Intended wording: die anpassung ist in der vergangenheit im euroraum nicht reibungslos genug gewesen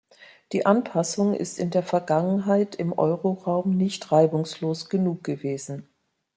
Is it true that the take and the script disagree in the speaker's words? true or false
false